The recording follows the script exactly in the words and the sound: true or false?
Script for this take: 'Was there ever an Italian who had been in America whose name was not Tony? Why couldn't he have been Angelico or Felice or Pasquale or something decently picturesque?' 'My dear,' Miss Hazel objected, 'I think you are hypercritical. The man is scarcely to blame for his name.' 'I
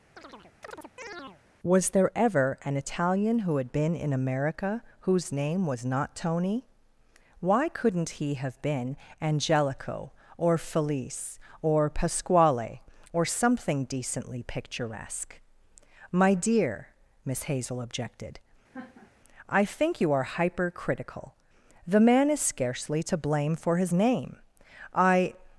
false